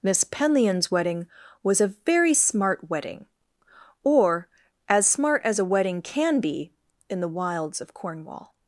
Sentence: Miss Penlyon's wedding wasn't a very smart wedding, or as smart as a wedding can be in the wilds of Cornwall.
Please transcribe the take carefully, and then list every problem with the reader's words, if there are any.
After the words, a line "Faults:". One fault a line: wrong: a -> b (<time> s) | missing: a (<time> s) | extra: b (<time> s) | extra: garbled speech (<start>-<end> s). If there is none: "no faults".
Miss Penlyon's wedding was a very smart wedding, or as smart as a wedding can be in the wilds of Cornwall.
Faults:
wrong: wasn't -> was (1.6 s)